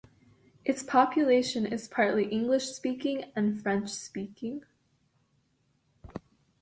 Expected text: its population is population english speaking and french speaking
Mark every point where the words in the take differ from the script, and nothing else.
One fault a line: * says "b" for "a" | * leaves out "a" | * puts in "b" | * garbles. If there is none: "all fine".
* says "partly" for "population"